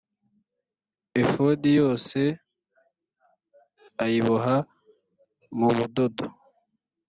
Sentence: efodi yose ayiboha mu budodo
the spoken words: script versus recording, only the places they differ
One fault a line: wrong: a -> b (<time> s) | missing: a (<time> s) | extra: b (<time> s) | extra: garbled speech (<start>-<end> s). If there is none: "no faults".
no faults